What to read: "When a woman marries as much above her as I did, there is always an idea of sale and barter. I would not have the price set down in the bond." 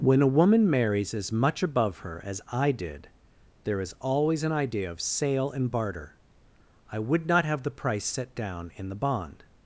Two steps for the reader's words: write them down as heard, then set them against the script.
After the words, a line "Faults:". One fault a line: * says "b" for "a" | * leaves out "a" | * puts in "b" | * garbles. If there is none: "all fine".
"When a woman marries as much above her as I did, there is always an idea of sale and barter. I would not have the price set down in the bond."
Faults:
all fine